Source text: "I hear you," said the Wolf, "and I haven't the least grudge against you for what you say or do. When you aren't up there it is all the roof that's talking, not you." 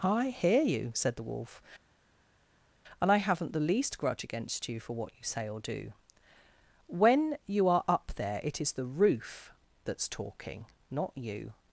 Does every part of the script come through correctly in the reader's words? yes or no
no